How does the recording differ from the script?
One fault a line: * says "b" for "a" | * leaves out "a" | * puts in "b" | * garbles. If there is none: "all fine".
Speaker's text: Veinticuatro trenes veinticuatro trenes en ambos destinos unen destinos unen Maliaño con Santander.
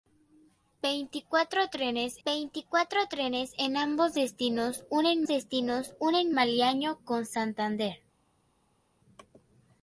all fine